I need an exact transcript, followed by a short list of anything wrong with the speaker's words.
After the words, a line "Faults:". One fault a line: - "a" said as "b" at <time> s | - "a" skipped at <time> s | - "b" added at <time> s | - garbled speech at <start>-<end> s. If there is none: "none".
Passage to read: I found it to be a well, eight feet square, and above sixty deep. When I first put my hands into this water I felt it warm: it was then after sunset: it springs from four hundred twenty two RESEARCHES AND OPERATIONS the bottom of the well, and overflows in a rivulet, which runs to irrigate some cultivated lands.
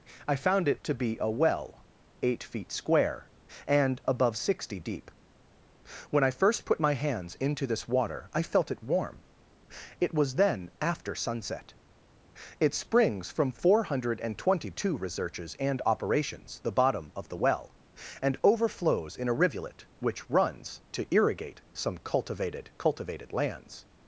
I found it to be a well, eight feet square, and above sixty deep. When I first put my hands into this water I felt it warm: it was then after sunset: it springs from four hundred twenty two RESEARCHES AND OPERATIONS the bottom of the well, and overflows in a rivulet, which runs to irrigate some cultivated cultivated lands.
Faults:
- "cultivated" added at 22.8 s